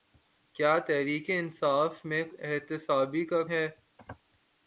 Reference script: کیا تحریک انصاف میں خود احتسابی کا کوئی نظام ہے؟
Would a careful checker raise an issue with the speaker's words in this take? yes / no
yes